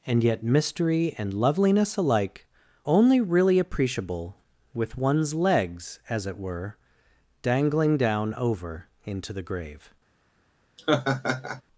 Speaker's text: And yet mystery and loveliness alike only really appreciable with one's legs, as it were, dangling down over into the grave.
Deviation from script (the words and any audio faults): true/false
true